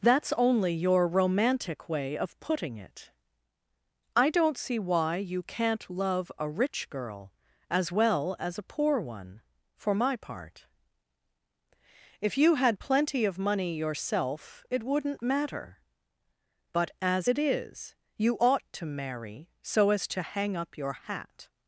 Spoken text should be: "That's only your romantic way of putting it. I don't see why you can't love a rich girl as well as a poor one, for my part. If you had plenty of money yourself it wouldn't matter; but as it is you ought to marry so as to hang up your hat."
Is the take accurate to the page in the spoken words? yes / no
yes